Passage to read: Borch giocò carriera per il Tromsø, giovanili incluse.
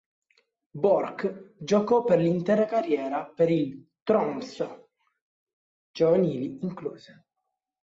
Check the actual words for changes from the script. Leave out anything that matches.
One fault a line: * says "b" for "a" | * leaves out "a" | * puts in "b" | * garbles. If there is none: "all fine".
* puts in "per l'intera"